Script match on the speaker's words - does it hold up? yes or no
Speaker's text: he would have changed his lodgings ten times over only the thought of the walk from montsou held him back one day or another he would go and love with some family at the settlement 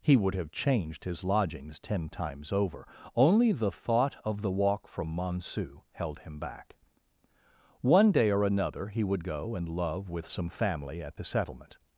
yes